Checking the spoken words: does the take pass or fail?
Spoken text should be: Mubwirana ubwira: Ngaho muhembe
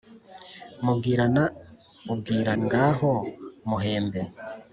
pass